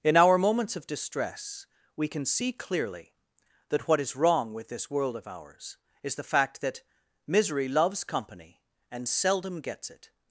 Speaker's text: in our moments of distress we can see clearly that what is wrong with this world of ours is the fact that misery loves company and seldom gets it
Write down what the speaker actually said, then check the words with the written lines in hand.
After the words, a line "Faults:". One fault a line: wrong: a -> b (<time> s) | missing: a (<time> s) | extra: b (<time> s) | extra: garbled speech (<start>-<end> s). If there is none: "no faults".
in our moments of distress we can see clearly that what is wrong with this world of ours is the fact that misery loves company and seldom gets it
Faults:
no faults